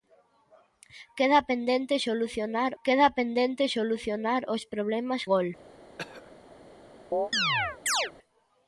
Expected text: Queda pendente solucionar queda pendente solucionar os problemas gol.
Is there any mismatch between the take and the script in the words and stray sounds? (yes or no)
yes